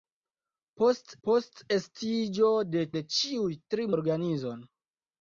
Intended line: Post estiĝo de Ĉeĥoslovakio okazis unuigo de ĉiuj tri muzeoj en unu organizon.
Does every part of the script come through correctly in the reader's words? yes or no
no